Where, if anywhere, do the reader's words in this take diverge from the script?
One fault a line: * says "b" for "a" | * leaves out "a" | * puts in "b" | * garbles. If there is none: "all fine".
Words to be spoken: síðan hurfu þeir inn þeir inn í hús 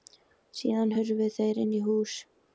* leaves out "þeir inn"